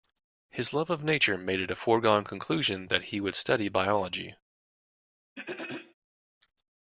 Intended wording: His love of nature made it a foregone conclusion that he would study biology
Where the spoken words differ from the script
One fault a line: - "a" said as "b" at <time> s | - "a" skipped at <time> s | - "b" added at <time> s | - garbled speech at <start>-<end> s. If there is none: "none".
none